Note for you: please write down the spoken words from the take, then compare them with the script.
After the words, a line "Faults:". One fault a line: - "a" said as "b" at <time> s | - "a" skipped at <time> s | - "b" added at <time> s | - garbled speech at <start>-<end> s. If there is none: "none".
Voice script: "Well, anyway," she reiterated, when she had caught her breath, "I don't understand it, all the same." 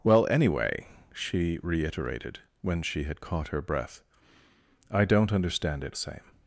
"Well, anyway," she reiterated, when she had caught her breath, "I don't understand it, same."
Faults:
- "all the" skipped at 6.0 s